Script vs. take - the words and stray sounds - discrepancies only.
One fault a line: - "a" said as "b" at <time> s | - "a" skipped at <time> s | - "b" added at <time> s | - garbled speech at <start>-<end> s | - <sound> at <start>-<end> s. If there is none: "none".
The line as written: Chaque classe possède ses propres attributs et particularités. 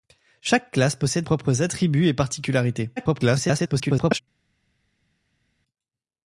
- "ses" skipped at 1.3 s
- garbled speech at 3.0-4.2 s